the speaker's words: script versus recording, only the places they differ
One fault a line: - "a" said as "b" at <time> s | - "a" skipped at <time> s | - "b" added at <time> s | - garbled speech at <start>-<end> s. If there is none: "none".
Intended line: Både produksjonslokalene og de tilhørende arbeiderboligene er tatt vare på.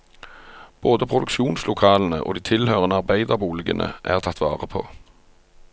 none